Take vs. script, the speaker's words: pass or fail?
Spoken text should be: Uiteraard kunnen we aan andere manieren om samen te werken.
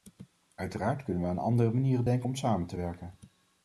fail